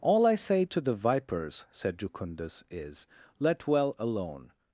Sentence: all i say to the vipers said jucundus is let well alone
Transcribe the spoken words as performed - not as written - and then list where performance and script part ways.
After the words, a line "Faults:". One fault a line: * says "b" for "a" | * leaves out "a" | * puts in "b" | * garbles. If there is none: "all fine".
all i say to the vipers said jucundus is let well alone
Faults:
all fine